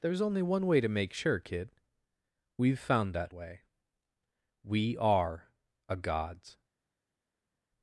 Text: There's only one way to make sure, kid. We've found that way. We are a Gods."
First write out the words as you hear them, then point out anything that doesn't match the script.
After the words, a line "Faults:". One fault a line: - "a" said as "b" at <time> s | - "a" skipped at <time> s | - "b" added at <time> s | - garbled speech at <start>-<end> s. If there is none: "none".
There's only one way to make sure, kid. We've found that way. We are a Gods."
Faults:
none